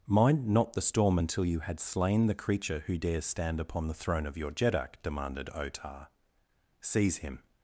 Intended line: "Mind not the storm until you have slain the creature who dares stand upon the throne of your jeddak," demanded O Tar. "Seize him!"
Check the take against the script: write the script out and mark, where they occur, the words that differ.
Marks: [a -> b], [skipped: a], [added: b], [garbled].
"Mind not the storm until you [have -> had] slain the creature who dares stand upon the throne of your jeddak," demanded O Tar. "Seize him!"